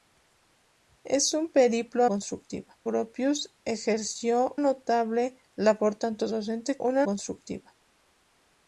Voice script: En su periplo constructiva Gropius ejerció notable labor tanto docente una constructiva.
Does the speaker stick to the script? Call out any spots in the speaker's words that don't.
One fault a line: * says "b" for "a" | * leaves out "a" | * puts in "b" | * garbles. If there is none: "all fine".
all fine